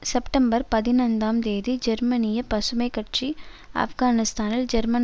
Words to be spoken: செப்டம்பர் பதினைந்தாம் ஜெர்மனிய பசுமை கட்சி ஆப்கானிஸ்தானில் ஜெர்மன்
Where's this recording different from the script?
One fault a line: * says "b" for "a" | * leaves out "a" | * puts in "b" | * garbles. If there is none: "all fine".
* puts in "தேதி"